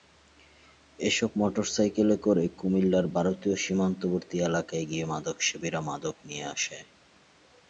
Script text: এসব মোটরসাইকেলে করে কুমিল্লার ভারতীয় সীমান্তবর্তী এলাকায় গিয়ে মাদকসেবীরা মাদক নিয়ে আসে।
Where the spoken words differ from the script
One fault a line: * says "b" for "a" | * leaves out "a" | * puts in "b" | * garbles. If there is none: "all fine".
all fine